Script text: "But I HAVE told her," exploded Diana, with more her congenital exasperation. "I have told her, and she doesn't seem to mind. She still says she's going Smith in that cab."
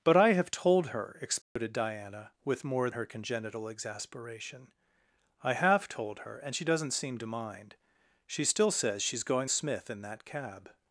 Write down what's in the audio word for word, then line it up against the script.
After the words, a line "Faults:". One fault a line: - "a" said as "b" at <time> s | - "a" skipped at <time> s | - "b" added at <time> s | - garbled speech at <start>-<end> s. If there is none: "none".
"But I HAVE told her," exploded Diana, with more her congenital exasperation. "I have told her, and she doesn't seem to mind. She still says she's going Smith in that cab."
Faults:
none